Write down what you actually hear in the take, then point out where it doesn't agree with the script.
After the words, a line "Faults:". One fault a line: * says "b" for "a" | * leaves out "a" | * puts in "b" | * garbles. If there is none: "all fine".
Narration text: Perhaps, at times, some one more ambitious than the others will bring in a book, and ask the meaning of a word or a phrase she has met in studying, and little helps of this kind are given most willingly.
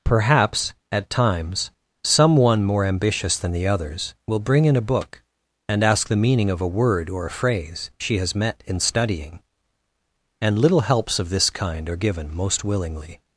Perhaps, at times, some one more ambitious than the others will bring in a book, and ask the meaning of a word or a phrase she has met in studying, and little helps of this kind are given most willingly.
Faults:
all fine